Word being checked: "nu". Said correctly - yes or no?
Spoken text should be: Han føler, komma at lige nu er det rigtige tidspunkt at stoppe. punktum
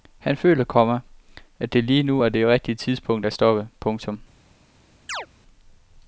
yes